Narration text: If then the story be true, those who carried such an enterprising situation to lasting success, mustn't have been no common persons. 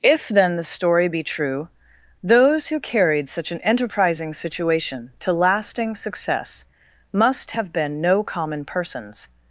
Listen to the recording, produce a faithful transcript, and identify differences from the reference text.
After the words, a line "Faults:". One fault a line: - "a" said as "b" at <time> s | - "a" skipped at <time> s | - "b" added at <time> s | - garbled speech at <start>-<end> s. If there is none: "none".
If then the story be true, those who carried such an enterprising situation to lasting success, must have been no common persons.
Faults:
- "mustn't" said as "must" at 7.1 s